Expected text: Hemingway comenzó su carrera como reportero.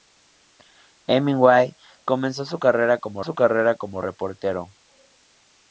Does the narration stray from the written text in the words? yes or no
yes